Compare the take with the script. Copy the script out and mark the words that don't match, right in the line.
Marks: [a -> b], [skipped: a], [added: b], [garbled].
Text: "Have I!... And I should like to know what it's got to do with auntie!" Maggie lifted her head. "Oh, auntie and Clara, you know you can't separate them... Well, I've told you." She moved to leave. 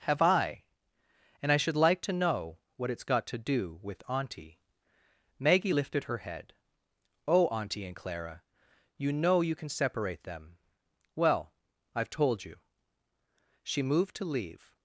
"Have I!... And I should like to know what it's got to do with auntie!" Maggie lifted her head. "Oh, auntie and Clara, you know you [can't -> can] separate them... Well, I've told you." She moved to leave.